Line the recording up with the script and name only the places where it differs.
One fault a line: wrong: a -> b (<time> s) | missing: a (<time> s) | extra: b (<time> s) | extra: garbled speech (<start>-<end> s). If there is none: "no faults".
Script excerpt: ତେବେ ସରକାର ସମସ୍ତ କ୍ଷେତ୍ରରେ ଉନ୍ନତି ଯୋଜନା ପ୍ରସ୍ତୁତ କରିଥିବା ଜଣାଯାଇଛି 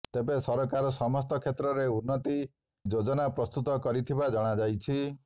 no faults